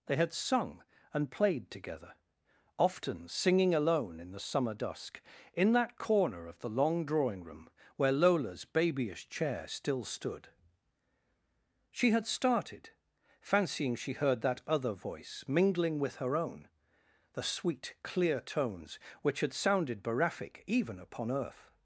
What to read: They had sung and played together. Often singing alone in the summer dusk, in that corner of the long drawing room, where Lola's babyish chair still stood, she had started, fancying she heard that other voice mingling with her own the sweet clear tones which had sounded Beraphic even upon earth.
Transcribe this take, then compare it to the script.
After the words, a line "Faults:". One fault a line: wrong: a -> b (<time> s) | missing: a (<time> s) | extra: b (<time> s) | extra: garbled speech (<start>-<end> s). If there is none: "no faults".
They had sung and played together. Often singing alone in the summer dusk, in that corner of the long drawing room, where Lola's babyish chair still stood, she had started, fancying she heard that other voice mingling with her own the sweet clear tones which had sounded Beraphic even upon earth.
Faults:
no faults